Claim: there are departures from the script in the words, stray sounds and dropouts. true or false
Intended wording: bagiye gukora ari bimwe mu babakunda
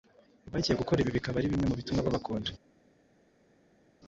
true